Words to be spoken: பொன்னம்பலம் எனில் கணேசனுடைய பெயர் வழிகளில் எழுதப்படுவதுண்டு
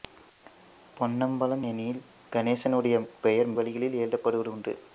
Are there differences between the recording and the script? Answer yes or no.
no